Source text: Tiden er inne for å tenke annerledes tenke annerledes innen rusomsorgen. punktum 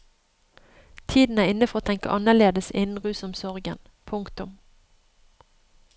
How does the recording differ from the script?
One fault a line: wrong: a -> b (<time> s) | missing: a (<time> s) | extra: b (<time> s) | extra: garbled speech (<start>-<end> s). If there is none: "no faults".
missing: tenke annerledes (2.7 s)